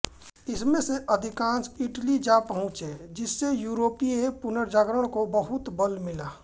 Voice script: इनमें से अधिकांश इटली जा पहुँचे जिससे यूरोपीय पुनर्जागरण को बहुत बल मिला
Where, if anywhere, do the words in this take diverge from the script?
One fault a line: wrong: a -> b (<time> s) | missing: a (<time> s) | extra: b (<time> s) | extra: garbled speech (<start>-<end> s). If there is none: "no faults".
no faults